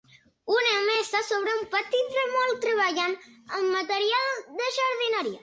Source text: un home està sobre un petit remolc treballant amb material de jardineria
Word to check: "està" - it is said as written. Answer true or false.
true